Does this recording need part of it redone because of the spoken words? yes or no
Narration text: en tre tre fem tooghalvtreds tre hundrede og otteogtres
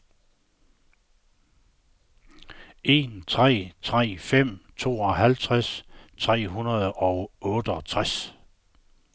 no